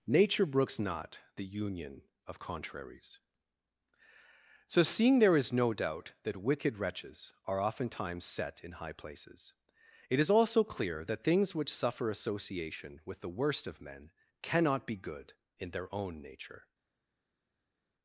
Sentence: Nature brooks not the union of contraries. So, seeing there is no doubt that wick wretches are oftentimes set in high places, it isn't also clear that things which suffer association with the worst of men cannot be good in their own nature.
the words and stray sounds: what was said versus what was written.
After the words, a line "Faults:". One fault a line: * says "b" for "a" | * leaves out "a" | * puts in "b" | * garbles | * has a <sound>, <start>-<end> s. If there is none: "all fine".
Nature brooks not the union of contraries. So, seeing there is no doubt that wicked wretches are oftentimes set in high places, it is also clear that things which suffer association with the worst of men cannot be good in their own nature.
Faults:
* says "wicked" for "wick"
* says "is" for "isn't"